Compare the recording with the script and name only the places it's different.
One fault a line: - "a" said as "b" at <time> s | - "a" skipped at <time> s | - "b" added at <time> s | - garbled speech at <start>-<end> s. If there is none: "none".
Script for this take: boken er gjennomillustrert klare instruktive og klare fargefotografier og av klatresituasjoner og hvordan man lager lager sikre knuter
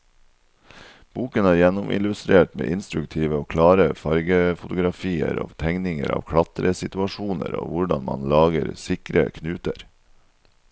- "klare" said as "med" at 2.6 s
- "tegninger" added at 5.6 s
- "lager" skipped at 8.7 s